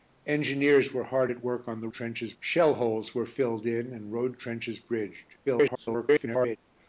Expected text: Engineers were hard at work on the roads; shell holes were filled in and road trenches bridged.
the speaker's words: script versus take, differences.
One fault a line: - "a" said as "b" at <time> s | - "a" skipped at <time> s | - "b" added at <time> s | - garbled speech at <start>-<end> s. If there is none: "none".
- "roads" said as "trenches" at 1.9 s
- garbled speech at 5.4-6.6 s